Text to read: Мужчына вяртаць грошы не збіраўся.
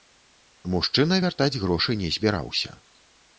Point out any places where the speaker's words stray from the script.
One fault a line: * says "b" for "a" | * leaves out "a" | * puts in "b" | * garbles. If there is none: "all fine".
all fine